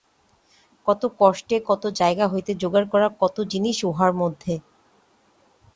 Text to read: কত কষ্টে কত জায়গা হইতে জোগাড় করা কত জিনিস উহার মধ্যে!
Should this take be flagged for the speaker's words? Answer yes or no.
no